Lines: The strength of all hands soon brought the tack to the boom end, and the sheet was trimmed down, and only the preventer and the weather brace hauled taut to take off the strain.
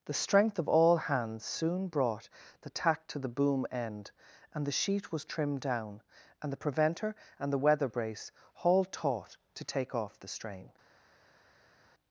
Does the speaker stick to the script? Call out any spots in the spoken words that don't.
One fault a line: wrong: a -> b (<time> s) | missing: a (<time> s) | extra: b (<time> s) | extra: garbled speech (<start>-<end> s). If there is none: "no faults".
missing: only (6.5 s)